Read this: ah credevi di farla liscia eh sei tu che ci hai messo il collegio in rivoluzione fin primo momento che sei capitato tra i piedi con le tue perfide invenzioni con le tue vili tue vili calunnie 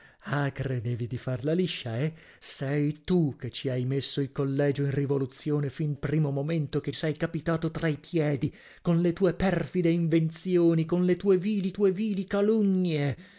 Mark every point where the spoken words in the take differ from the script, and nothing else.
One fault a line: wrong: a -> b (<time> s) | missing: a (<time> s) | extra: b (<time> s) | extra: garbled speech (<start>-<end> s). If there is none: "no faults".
no faults